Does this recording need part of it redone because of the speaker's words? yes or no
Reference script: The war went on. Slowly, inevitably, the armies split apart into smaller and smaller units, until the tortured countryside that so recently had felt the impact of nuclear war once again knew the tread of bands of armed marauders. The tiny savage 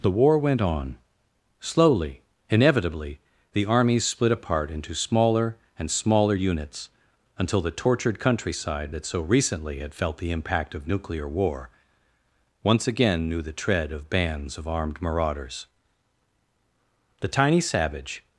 no